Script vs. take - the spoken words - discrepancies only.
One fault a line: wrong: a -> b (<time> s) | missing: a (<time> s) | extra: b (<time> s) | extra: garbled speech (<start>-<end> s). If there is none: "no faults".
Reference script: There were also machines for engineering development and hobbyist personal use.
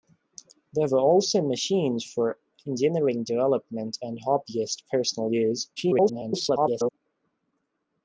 extra: garbled speech (5.8-6.9 s)